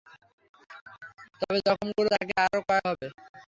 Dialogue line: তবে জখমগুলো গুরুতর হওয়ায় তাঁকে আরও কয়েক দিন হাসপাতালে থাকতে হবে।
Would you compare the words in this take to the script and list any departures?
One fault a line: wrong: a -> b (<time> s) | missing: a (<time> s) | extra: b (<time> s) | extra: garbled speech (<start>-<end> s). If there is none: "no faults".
missing: গুরুতর হওয়ায় (2.1 s)
missing: দিন হাসপাতালে থাকতে (2.8 s)